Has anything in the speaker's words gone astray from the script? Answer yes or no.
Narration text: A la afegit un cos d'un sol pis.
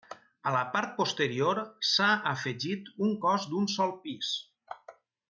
yes